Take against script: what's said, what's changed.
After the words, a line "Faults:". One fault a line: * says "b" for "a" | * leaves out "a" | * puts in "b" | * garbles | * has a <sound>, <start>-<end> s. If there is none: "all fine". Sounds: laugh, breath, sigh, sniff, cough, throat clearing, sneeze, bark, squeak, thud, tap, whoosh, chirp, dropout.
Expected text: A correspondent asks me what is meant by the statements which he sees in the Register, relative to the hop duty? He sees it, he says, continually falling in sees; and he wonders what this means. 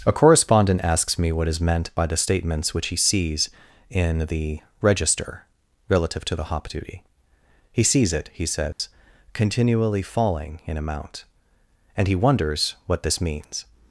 A correspondent asks me what is meant by the statements which he sees in the Register, relative to the hop duty? He sees it, he says, continually falling in amount; and he wonders what this means.
Faults:
* has a dropout, 8.7-8.8 s
* says "amount" for "sees"